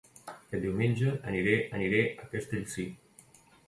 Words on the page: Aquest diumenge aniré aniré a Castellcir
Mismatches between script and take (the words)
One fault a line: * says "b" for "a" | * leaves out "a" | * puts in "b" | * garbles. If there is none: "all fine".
all fine